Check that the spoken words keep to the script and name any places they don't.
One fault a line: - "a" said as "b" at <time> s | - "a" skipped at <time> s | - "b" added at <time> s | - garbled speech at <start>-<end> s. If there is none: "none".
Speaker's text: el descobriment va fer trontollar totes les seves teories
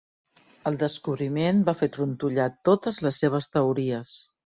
none